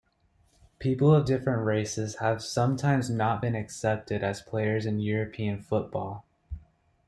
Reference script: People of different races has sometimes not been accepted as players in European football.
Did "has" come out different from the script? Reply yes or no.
yes